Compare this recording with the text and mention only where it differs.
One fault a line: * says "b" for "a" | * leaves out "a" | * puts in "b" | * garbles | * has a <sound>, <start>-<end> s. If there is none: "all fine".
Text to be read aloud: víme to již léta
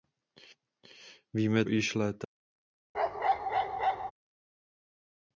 * leaves out "to"
* has a bark, 2.9-4.1 s